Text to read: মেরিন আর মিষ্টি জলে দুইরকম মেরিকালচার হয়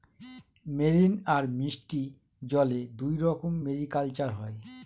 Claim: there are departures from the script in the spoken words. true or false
false